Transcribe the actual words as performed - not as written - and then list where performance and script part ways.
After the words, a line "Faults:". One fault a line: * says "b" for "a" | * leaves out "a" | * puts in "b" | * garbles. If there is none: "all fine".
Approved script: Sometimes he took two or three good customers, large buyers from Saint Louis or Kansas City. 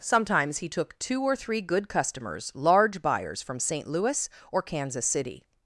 Sometimes he took two or three good customers, large buyers from Saint Louis or Kansas City.
Faults:
all fine